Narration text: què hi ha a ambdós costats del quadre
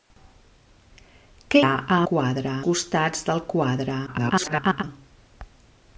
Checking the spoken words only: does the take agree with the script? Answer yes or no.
no